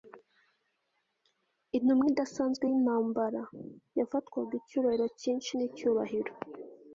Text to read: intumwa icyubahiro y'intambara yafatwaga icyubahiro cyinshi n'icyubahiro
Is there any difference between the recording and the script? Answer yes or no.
yes